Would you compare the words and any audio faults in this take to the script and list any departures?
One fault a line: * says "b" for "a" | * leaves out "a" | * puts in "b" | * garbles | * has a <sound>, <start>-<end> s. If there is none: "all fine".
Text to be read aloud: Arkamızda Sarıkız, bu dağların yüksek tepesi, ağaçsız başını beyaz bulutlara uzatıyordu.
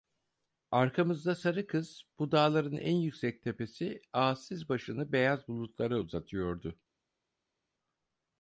* puts in "en"